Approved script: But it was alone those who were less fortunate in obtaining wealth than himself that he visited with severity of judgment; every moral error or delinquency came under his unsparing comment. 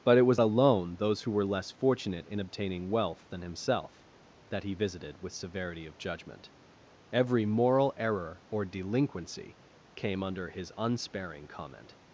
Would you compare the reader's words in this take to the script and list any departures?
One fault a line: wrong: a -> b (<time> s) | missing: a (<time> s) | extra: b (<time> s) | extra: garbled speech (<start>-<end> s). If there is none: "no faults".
no faults